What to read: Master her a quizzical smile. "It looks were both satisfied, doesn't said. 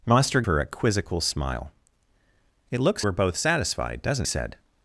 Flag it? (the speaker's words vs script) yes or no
no